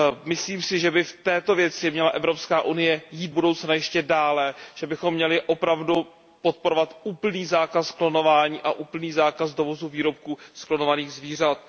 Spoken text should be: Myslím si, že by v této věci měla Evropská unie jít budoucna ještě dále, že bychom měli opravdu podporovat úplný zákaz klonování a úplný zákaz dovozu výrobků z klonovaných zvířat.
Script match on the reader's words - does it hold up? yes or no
yes